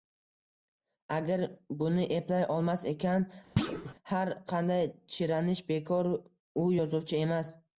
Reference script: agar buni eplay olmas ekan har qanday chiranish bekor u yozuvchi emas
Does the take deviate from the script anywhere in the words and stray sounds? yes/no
yes